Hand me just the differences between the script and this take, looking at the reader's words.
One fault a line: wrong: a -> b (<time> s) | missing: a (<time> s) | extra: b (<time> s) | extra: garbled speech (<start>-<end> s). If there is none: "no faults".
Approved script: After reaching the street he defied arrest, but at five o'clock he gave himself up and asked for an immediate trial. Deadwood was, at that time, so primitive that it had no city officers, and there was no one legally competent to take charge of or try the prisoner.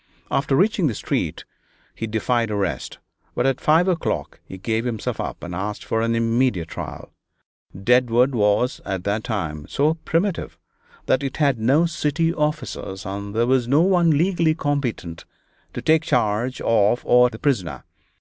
missing: try (17.3 s)